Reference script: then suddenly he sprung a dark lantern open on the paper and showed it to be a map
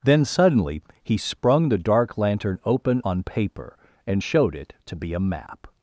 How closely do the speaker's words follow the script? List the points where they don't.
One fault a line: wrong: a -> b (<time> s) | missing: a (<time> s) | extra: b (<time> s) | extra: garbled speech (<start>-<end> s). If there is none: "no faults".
wrong: a -> the (1.7 s)
missing: the (3.2 s)